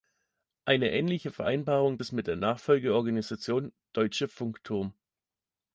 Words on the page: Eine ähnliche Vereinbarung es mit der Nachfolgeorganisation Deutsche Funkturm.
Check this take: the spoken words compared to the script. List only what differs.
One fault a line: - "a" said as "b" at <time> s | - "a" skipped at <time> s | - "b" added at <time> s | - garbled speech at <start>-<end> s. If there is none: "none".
none